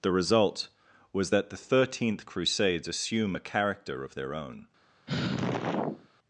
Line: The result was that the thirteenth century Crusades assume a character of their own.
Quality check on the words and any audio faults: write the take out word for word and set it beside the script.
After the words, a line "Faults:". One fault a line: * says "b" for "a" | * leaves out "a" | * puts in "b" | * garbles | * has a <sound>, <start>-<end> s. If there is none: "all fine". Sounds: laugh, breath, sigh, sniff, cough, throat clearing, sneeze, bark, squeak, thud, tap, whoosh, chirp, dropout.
The result was that the thirteenth Crusades assume a character of their own.
Faults:
* leaves out "century"
* has a sigh, 5.1-6.1 s